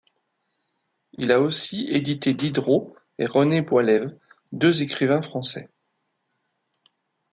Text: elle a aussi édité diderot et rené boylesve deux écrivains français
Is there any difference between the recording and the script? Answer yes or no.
yes